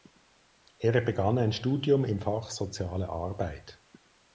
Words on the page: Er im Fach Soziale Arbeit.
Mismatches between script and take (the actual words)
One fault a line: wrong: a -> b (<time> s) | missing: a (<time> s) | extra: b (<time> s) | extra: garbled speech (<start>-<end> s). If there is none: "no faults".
extra: begann ein Studium (1.0 s)